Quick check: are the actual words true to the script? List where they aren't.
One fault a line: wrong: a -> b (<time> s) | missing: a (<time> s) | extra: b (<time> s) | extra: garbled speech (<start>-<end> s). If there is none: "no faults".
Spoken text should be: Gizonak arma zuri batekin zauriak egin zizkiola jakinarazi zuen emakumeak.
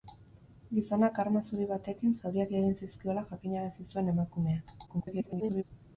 extra: garbled speech (4.9-5.6 s)